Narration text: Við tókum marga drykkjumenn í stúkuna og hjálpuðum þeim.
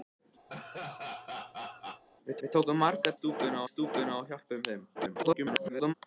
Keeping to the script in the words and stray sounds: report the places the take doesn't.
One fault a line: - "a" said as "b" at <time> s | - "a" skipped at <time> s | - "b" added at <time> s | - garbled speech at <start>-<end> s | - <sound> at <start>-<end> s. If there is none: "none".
- laugh at 0.5-2.0 s
- "við" added at 2.4 s
- "drykkjumenn" said as "stúkuna" at 3.2 s
- garbled speech at 4.9-5.9 s